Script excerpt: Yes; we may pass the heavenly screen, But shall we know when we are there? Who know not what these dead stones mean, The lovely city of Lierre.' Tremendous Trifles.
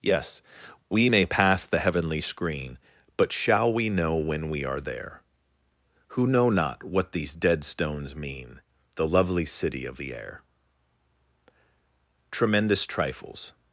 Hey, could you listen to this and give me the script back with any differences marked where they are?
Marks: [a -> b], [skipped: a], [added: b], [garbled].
Yes; we may pass the heavenly screen, But shall we know when we are there? Who know not what these dead stones mean, The lovely city of Lierre.' Tremendous Trifles.